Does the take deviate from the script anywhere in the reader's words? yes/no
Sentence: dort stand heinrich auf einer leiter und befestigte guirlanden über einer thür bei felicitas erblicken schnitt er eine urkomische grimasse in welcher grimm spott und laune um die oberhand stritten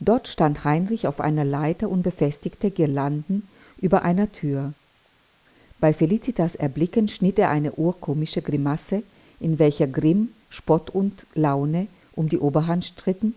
no